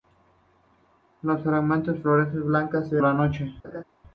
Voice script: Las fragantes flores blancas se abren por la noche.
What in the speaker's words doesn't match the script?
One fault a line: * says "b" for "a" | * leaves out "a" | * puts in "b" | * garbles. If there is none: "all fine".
* leaves out "abren por"